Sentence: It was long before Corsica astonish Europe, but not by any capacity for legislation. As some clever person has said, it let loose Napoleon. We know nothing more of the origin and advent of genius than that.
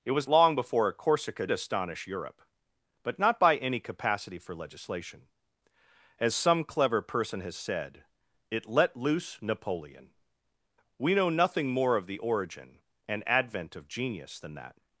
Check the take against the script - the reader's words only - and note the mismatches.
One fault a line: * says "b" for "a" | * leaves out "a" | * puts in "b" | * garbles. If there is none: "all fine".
all fine